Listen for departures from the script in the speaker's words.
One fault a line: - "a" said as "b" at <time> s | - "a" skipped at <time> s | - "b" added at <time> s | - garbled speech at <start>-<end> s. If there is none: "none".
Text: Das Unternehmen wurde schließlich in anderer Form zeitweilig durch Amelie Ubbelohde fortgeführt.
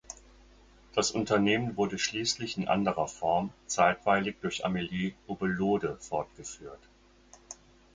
none